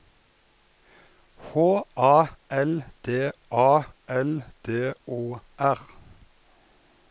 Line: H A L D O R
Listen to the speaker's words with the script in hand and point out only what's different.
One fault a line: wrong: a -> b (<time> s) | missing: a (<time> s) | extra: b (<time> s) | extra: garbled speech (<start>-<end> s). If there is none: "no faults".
extra: A L D (3.5 s)